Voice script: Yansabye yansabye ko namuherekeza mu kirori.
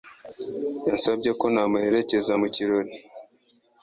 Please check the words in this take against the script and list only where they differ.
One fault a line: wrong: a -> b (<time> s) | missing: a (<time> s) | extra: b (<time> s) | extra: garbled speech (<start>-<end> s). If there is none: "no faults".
missing: yansabye (1.3 s)